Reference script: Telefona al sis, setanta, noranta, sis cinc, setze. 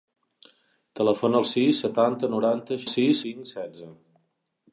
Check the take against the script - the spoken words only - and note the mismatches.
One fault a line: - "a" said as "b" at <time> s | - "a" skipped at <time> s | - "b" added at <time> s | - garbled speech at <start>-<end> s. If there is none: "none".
none